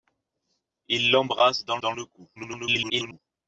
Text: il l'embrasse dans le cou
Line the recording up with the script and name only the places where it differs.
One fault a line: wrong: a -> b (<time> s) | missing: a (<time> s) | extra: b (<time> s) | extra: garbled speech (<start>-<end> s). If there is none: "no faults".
extra: dans (1.8 s)
extra: garbled speech (2.4-3.2 s)